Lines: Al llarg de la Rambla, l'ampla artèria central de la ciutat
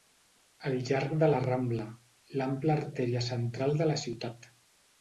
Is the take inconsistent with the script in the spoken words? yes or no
no